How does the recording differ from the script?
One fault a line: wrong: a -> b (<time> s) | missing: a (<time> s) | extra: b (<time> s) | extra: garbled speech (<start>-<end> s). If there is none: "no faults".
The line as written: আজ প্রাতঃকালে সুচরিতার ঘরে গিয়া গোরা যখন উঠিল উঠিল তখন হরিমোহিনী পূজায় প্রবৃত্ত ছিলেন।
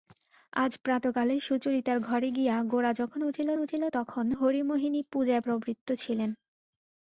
no faults